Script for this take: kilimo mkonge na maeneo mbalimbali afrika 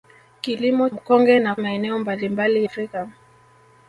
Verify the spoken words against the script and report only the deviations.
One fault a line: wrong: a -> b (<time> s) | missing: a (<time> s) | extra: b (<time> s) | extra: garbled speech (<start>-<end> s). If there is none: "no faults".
no faults